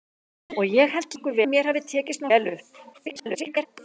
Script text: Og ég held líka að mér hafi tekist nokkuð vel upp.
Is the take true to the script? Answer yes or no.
no